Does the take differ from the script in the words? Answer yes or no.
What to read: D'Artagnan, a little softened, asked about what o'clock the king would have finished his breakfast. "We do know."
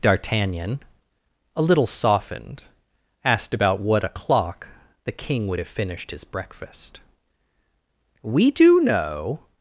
no